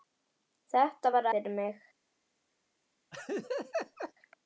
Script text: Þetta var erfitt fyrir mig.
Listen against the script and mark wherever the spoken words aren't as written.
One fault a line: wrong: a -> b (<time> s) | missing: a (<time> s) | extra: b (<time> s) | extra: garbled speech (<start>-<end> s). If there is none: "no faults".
missing: erfitt (1.3 s)